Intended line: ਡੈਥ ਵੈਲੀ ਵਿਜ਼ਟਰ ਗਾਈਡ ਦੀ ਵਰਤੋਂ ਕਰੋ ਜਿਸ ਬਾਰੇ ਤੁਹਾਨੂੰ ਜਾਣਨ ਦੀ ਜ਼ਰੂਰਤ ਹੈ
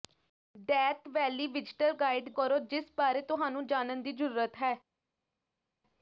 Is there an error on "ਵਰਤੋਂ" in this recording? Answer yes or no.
yes